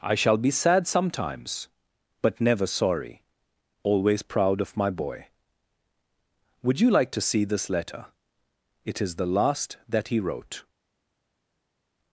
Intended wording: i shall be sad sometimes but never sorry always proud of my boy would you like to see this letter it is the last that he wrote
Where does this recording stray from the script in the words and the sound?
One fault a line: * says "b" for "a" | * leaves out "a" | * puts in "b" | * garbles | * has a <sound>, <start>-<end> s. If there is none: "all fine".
all fine